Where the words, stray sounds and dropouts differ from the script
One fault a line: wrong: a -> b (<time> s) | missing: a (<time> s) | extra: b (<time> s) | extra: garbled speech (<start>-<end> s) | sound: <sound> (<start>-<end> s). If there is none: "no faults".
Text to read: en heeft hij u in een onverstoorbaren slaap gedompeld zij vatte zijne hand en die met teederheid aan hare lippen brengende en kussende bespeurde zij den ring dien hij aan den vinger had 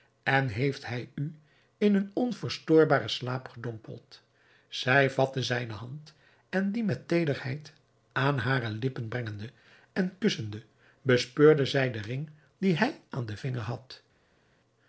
no faults